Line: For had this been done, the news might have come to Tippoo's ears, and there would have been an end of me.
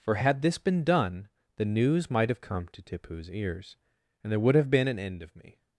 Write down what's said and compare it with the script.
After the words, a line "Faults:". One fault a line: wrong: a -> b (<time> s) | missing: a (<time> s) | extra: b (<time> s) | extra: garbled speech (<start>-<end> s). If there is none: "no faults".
For had this been done, the news might have come to Tippoo's ears, and there would have been an end of me.
Faults:
no faults